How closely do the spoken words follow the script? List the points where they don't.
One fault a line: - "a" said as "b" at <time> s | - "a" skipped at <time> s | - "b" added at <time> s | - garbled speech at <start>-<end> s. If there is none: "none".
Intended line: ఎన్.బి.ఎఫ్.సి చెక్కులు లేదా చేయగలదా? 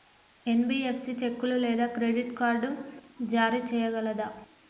- "క్రెడిట్ కార్డ్ జారీ" added at 1.9 s